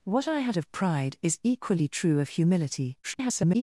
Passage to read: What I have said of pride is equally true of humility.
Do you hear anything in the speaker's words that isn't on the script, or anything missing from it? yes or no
yes